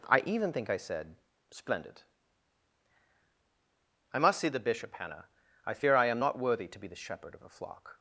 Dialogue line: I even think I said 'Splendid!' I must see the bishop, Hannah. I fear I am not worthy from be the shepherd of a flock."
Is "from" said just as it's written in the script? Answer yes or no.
no